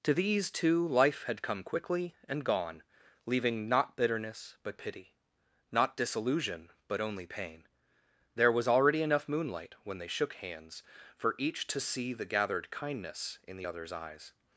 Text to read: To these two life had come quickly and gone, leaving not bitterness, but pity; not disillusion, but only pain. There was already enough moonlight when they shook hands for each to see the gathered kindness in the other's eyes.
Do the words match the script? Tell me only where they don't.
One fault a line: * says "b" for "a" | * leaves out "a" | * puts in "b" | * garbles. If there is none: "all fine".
all fine